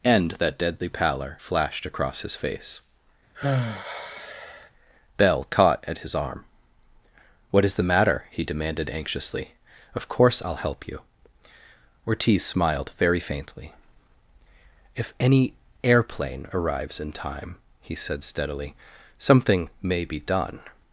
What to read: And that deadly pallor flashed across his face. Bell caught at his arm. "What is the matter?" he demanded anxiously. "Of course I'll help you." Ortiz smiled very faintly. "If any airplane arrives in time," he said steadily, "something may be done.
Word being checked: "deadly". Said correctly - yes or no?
yes